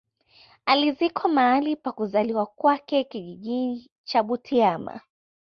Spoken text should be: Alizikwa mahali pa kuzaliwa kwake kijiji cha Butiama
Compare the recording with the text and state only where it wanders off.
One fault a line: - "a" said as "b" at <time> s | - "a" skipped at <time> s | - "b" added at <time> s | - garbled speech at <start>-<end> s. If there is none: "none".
none